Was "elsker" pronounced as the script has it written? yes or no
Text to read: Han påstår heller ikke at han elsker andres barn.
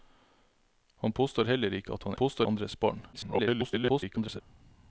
no